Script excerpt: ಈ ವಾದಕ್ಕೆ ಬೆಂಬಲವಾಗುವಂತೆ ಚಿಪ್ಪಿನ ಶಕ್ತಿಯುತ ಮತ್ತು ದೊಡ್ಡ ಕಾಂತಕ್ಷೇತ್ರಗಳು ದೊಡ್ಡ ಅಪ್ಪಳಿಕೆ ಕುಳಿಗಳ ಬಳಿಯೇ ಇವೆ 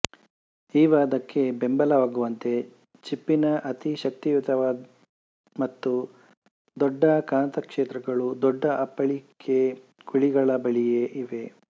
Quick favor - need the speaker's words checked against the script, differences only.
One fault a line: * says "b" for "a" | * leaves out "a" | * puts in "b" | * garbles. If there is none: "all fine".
* puts in "ಅತಿ"